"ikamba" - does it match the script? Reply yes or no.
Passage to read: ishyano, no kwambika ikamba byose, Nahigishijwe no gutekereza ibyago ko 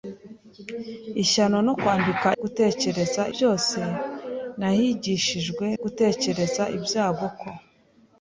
no